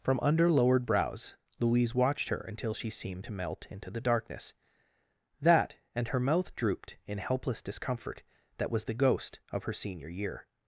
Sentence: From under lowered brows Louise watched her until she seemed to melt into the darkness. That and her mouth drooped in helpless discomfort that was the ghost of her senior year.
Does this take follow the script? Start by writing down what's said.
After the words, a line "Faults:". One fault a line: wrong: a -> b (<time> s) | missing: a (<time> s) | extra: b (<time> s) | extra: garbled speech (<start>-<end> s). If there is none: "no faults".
From under lowered brows Louise watched her until she seemed to melt into the darkness. That and her mouth drooped in helpless discomfort that was the ghost of her senior year.
Faults:
no faults